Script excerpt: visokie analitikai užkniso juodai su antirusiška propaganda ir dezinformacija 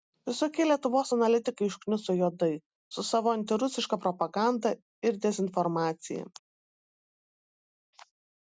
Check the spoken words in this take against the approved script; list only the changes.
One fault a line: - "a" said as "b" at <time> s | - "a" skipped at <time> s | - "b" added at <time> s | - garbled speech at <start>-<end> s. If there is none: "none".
- "lietuvos" added at 0.7 s
- "savo" added at 3.1 s